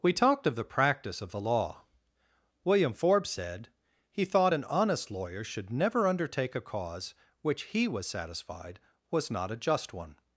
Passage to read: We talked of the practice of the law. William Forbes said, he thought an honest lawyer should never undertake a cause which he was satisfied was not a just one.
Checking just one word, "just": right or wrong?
right